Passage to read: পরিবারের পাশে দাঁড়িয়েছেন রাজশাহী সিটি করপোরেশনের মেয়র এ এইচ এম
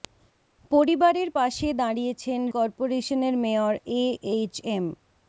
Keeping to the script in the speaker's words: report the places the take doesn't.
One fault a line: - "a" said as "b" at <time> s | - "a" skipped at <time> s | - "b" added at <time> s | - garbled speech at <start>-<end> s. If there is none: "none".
- "রাজশাহী সিটি" skipped at 2.4 s